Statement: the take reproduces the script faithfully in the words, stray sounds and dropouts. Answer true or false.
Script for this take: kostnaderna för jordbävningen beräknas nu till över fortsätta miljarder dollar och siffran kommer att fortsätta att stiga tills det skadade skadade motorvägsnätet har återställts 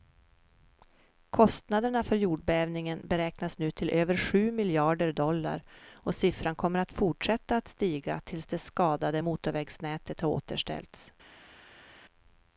false